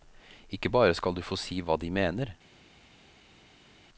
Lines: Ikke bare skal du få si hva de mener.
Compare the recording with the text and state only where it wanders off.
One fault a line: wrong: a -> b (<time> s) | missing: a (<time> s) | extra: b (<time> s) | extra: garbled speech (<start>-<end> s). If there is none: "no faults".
no faults